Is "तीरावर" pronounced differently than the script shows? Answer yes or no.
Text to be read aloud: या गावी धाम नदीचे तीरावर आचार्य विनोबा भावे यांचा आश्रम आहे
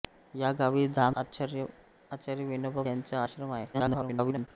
yes